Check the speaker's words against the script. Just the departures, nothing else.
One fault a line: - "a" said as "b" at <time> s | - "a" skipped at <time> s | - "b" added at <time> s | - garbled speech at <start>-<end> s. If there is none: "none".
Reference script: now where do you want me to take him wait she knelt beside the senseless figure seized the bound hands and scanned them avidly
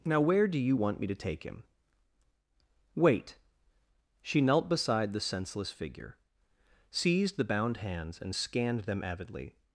none